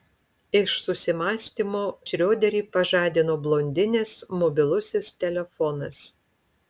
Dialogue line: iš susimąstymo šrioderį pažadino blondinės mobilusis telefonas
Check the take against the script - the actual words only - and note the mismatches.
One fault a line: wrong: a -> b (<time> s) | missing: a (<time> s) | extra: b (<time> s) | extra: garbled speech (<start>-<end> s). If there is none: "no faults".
no faults